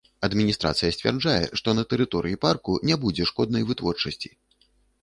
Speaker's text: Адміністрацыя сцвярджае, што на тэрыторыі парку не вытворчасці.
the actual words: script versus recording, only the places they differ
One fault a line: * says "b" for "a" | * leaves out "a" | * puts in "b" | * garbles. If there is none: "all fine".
* puts in "будзе шкоднай"